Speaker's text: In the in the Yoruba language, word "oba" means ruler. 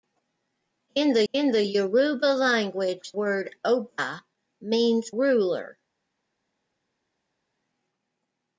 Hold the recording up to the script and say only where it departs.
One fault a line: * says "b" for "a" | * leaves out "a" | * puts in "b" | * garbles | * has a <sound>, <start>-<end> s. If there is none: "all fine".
all fine